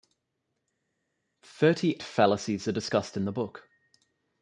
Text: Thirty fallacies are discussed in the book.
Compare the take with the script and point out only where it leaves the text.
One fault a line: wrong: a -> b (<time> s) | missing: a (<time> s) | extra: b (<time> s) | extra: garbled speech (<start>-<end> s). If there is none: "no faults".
no faults